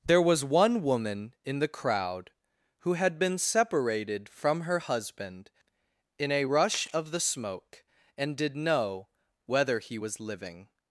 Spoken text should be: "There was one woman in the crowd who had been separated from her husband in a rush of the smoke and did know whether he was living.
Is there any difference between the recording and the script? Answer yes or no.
no